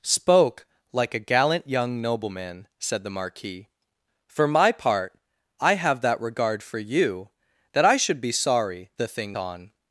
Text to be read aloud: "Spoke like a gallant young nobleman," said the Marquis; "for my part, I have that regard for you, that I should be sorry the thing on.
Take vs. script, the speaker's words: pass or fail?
pass